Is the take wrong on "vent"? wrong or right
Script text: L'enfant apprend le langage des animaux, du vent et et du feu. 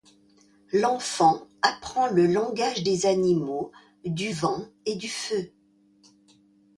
right